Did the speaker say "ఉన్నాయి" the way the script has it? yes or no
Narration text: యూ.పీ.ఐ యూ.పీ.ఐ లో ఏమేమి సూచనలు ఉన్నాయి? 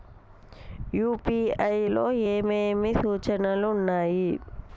yes